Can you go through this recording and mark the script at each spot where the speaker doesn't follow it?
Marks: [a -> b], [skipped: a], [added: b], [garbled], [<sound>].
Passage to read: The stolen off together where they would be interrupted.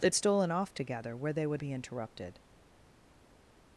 The stolen off together where they would be interrupted.